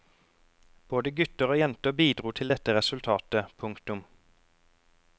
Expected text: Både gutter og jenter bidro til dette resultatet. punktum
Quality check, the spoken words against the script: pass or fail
pass